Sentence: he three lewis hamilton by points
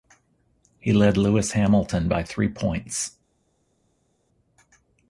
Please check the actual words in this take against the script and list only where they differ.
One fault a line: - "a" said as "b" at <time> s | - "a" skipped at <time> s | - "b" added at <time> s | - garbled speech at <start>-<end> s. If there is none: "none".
- "three" said as "led" at 0.9 s
- "three" added at 2.2 s